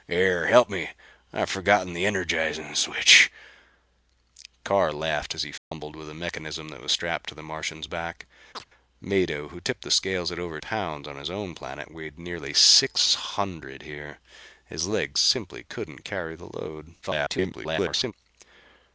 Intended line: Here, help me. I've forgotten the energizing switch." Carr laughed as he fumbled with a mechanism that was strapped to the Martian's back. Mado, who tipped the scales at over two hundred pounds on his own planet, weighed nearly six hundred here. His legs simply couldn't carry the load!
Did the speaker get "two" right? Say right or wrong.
wrong